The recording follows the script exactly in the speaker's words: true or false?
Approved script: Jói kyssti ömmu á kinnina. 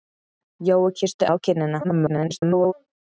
false